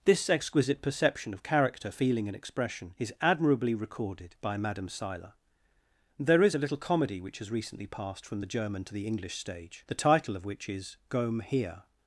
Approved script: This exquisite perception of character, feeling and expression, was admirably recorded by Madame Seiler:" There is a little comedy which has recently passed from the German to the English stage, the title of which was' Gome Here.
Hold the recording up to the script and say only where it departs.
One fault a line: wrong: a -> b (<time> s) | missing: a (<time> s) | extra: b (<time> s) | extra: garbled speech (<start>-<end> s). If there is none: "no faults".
wrong: was -> is (3.0 s)
wrong: was -> is (10.7 s)